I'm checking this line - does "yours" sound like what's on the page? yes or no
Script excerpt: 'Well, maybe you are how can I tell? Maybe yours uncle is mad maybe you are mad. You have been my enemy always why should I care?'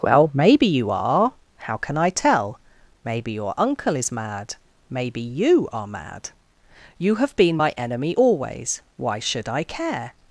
no